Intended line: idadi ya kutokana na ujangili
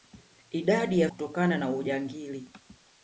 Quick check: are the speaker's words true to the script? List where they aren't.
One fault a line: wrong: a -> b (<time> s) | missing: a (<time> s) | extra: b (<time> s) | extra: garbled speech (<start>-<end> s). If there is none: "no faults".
no faults